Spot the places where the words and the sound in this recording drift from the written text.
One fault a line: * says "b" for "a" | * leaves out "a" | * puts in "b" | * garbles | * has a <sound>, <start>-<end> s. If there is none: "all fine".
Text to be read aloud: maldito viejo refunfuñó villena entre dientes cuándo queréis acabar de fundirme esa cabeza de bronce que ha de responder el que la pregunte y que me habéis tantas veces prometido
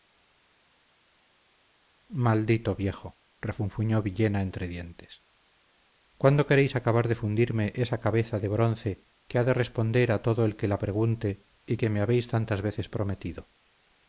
* puts in "a todo"